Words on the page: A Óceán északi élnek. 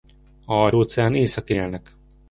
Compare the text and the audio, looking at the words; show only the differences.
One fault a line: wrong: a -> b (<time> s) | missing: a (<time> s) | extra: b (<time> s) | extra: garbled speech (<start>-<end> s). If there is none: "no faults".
no faults